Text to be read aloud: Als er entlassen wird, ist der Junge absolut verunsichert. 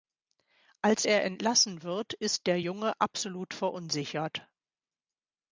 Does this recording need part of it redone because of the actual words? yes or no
no